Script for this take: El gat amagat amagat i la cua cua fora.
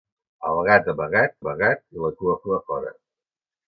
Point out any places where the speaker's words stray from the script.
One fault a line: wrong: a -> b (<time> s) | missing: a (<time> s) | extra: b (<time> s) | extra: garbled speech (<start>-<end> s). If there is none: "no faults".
no faults